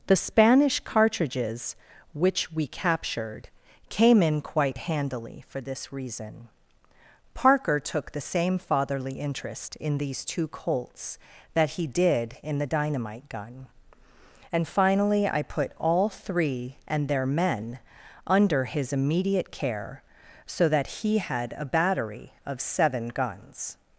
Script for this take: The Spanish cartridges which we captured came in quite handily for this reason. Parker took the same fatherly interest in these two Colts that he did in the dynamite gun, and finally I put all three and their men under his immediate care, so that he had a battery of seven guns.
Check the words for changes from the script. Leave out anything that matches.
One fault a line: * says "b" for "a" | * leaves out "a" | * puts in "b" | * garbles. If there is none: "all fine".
all fine